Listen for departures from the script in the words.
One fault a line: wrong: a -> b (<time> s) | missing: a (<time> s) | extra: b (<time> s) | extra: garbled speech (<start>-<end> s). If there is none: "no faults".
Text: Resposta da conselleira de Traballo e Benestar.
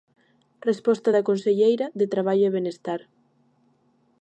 no faults